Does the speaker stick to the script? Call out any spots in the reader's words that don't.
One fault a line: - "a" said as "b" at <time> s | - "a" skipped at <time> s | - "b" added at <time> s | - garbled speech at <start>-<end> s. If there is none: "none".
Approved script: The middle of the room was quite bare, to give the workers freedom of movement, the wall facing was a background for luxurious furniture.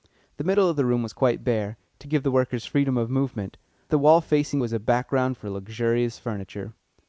none